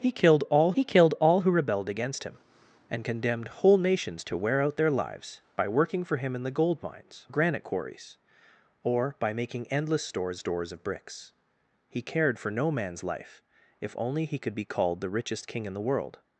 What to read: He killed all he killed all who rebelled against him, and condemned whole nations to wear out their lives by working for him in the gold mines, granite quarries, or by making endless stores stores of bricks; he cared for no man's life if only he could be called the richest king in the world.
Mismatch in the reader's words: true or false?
false